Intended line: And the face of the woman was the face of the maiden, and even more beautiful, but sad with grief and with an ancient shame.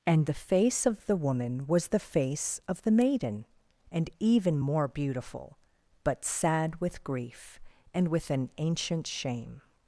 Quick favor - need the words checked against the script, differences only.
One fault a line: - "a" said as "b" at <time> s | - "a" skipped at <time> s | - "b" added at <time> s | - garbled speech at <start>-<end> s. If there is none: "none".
none